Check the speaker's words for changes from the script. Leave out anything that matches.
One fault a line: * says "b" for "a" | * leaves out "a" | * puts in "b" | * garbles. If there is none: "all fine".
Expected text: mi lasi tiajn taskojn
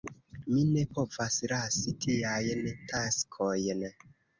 * puts in "ne povas"